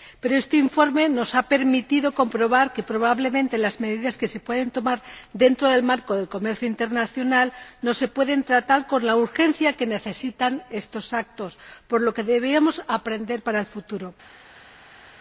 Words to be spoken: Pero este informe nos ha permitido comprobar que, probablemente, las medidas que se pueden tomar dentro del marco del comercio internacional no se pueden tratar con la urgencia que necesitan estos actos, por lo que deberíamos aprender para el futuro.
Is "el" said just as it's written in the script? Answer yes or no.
yes